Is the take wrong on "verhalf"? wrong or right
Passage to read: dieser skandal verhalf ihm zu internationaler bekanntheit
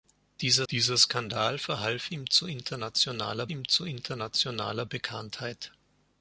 right